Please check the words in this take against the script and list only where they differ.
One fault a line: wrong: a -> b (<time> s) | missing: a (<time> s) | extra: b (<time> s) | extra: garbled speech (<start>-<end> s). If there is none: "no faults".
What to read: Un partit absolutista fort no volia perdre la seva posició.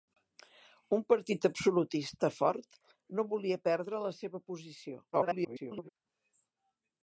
extra: garbled speech (5.1-5.9 s)